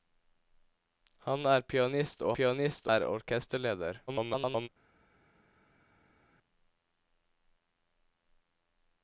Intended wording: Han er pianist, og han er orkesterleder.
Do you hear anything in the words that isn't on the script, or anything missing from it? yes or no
yes